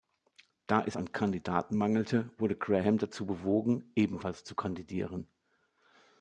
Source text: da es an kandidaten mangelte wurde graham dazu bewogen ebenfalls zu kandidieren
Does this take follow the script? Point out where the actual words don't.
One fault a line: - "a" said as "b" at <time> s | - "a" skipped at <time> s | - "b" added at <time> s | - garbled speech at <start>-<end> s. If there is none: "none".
none